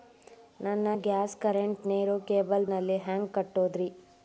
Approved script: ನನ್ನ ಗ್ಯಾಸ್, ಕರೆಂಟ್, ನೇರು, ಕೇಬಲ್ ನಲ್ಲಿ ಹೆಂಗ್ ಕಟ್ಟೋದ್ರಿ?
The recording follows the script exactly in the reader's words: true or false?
true